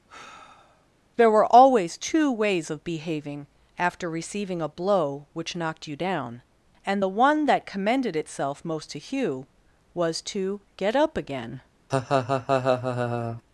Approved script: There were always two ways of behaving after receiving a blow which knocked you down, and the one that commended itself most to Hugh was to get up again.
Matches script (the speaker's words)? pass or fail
pass